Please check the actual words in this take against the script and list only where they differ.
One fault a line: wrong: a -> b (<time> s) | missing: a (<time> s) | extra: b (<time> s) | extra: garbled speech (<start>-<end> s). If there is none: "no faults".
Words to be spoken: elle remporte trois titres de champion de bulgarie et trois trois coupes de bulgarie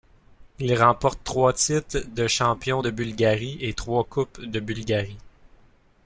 wrong: elle -> il (0.6 s)
missing: trois (4.0 s)